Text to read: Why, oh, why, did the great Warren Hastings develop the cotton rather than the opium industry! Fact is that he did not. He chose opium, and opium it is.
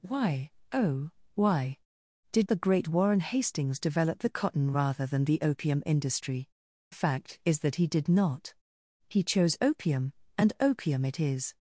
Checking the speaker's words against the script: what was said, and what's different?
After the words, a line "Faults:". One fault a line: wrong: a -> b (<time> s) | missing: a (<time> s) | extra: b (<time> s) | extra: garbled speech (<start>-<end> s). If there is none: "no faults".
Why, oh, why, did the great Warren Hastings develop the cotton rather than the opium industry! Fact is that he did not. He chose opium, and opium it is.
Faults:
no faults